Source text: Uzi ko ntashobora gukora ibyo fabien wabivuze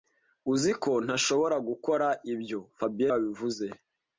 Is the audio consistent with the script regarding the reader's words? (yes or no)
yes